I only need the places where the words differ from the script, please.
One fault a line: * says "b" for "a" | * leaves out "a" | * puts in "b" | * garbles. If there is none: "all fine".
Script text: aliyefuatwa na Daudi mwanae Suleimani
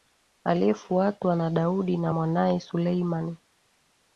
* puts in "na"